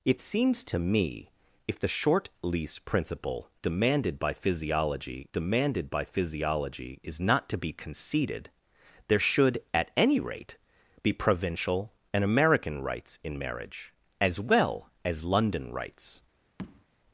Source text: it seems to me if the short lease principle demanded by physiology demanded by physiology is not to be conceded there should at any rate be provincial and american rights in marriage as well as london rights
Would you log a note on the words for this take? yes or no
no